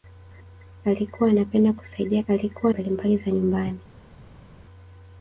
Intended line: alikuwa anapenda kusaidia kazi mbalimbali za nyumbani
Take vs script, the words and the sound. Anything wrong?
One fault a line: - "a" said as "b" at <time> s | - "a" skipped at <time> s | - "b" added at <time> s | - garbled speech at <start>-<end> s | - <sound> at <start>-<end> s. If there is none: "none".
- "kazi" said as "alikuwa" at 2.3 s